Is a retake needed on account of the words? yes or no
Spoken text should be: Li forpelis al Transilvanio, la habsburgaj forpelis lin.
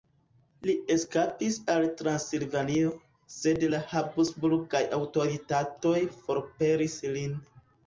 yes